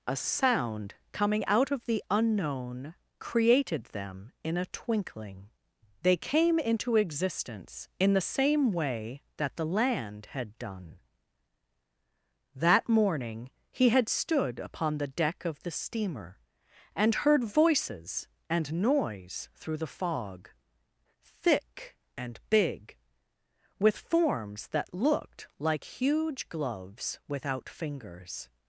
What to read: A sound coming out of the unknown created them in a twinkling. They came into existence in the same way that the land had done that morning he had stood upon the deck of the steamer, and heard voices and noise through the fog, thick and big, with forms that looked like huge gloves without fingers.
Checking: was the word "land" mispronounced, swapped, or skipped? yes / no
no